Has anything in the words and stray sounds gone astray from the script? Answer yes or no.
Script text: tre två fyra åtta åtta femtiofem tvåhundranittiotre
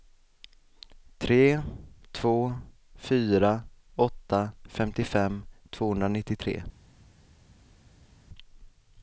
yes